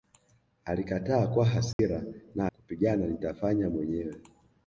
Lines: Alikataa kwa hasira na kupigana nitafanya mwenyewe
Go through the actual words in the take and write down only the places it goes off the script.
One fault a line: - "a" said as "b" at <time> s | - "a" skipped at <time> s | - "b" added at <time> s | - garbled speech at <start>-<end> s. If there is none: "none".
none